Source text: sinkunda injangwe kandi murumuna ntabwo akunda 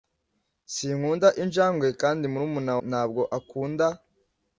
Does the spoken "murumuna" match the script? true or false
true